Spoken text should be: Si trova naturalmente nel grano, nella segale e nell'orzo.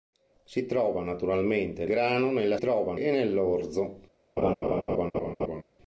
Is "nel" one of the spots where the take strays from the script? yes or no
yes